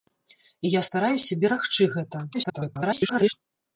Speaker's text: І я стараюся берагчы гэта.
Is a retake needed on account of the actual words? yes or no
yes